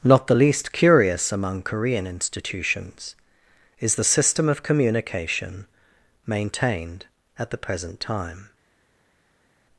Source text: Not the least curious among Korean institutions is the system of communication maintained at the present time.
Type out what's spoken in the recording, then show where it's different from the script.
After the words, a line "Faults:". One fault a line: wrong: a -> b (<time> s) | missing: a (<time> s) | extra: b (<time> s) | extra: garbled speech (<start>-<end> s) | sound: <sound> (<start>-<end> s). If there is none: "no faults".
Not the least curious among Korean institutions is the system of communication maintained at the present time.
Faults:
no faults